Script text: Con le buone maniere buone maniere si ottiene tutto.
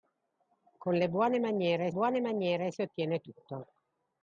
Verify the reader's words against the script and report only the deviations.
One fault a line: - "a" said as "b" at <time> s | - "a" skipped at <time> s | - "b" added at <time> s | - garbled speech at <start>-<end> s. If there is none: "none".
none